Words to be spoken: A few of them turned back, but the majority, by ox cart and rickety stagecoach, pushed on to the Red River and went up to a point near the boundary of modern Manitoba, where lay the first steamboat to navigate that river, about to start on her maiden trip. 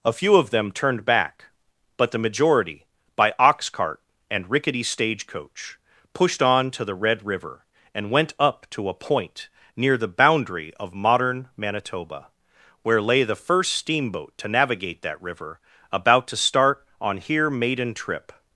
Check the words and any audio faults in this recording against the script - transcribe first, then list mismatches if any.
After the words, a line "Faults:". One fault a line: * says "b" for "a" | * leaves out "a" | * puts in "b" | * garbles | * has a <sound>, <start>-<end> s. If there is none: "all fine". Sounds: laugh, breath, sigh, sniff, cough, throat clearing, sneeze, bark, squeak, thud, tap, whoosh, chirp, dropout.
A few of them turned back, but the majority, by ox cart and rickety stagecoach, pushed on to the Red River and went up to a point near the boundary of modern Manitoba, where lay the first steamboat to navigate that river, about to start on here maiden trip.
Faults:
* says "here" for "her"